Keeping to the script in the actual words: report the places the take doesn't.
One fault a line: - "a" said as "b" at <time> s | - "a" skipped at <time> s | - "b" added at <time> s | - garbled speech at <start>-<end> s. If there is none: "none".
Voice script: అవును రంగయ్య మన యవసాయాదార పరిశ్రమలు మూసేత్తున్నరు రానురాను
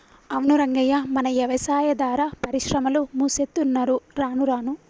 none